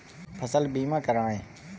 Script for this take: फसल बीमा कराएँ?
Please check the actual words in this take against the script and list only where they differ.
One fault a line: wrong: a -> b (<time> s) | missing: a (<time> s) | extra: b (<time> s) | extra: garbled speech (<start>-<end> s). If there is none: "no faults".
no faults